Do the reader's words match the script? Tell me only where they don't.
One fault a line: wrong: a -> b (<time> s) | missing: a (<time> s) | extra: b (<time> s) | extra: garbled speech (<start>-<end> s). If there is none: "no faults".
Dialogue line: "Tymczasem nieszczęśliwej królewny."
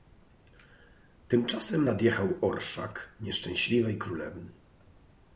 extra: nadjechał orszak (1.8 s)